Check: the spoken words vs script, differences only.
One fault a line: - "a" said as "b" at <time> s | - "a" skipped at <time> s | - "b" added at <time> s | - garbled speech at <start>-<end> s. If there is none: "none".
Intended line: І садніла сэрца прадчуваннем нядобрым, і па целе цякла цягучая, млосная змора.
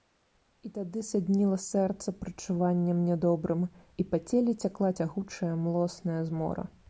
- "тады" added at 0.8 s